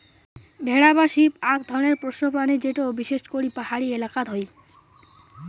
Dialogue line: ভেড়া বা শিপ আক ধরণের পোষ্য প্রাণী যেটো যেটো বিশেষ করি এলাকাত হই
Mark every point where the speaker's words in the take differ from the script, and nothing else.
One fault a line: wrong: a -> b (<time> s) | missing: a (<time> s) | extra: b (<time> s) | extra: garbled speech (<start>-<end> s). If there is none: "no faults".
missing: যেটো (2.8 s)
extra: পাহাড়ি (3.6 s)